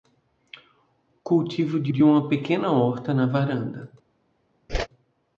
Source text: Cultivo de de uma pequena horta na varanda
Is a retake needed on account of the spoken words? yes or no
no